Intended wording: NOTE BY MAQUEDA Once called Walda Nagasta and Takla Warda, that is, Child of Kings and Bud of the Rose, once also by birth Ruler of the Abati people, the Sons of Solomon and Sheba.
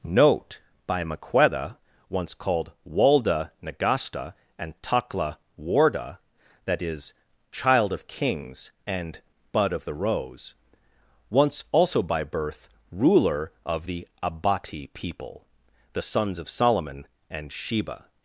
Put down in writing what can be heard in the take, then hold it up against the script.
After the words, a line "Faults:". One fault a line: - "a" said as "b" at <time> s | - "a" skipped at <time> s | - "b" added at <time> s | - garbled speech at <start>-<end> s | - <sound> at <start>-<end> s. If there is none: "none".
NOTE BY MAQUEDA Once called Walda Nagasta and Takla Warda, that is, Child of Kings and Bud of the Rose, once also by birth Ruler of the Abati people, the Sons of Solomon and Sheba.
Faults:
none